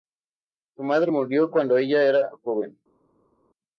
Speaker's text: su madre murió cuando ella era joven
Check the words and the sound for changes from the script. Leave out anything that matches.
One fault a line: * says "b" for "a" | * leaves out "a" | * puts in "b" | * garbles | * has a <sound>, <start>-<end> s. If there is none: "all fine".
all fine